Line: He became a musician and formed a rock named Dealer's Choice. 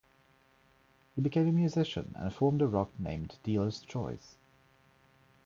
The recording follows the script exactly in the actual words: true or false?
true